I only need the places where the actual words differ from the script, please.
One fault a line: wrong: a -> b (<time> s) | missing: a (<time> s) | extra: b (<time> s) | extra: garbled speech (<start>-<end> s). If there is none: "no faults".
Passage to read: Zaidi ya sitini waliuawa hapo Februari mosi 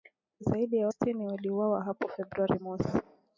no faults